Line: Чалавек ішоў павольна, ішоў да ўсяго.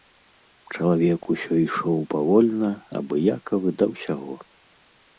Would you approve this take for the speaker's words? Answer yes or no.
no